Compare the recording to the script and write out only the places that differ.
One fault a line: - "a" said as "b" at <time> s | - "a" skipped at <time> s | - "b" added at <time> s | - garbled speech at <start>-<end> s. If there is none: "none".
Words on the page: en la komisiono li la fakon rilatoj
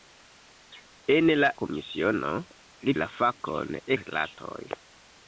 none